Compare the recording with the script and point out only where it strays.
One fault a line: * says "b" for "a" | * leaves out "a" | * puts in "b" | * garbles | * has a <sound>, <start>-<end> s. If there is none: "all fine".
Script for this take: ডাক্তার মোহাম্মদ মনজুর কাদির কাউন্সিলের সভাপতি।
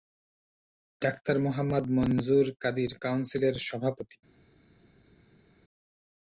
all fine